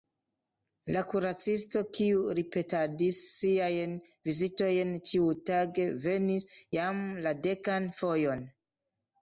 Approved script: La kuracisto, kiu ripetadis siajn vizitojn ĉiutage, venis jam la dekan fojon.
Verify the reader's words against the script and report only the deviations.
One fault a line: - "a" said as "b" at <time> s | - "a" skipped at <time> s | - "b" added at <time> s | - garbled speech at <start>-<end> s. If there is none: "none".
none